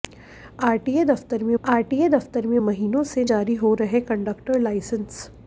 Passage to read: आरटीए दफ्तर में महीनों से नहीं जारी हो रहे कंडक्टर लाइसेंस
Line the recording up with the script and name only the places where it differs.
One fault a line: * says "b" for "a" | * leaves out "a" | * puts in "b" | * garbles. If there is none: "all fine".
* puts in "आरटीए दफ्तर में"
* leaves out "नहीं"